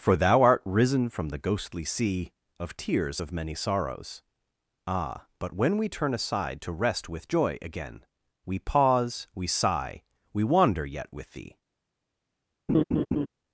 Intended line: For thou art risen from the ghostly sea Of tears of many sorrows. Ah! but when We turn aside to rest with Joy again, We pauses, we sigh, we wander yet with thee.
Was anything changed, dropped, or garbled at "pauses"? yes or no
yes